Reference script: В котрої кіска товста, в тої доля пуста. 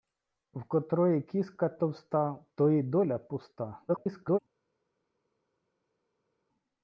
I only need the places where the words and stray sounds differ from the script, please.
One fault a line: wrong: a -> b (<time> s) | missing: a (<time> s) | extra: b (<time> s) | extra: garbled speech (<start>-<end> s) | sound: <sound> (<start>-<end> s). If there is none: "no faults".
extra: garbled speech (3.9-4.4 s)